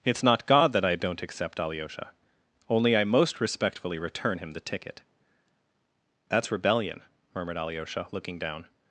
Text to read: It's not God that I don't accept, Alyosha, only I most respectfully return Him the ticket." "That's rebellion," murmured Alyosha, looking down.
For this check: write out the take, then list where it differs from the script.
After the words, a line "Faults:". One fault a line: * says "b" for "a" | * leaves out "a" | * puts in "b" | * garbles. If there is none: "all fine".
It's not God that I don't accept, Alyosha, only I most respectfully return Him the ticket." "That's rebellion," murmured Alyosha, looking down.
Faults:
all fine